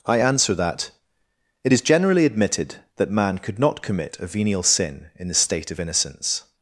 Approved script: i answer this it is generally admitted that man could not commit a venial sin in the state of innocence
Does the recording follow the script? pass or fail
fail